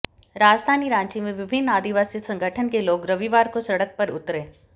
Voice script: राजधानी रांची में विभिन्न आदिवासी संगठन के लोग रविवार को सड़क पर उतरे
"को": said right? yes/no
yes